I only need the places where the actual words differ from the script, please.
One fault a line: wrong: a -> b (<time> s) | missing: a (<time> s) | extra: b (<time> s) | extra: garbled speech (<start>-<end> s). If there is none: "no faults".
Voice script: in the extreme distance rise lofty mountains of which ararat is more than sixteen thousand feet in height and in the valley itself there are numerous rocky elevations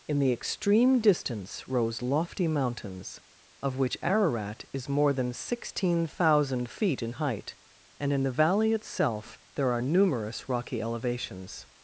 wrong: rise -> rose (1.7 s)